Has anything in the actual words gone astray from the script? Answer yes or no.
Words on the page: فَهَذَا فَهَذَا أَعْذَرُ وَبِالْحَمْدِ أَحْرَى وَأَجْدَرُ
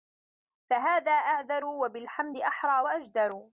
yes